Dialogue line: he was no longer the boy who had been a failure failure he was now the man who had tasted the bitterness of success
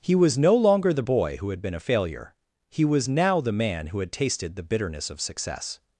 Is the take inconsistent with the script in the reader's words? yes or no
yes